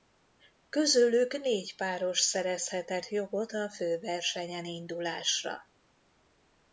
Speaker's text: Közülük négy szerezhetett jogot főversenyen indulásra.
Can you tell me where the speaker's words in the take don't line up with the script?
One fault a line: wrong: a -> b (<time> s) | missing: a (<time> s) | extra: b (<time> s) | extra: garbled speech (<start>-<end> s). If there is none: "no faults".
extra: páros (1.8 s)
extra: a (3.5 s)